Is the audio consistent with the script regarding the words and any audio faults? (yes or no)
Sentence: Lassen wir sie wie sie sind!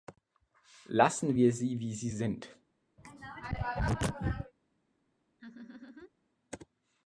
no